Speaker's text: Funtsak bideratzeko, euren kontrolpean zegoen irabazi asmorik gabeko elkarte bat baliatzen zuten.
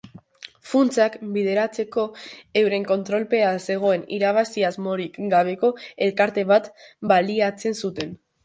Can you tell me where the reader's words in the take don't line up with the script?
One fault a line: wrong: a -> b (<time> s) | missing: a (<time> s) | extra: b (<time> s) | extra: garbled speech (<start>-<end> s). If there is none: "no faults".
no faults